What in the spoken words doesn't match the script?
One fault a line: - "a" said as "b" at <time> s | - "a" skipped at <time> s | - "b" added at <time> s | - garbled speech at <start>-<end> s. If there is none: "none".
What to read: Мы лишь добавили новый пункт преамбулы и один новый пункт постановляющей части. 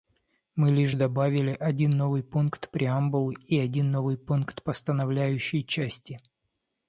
- "один" added at 1.5 s